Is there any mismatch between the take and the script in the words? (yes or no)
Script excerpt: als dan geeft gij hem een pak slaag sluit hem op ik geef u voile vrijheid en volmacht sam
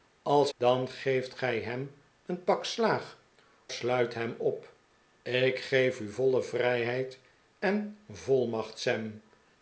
no